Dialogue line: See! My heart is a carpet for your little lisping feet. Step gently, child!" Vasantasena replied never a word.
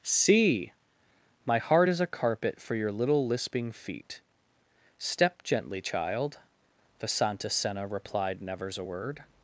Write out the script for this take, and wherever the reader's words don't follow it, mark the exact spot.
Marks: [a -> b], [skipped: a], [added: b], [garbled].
See! My heart is a carpet for your little lisping feet. Step gently, child!" Vasantasena replied [never -> nevers] a word.